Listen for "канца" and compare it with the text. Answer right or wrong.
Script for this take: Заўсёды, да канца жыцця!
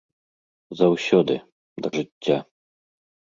wrong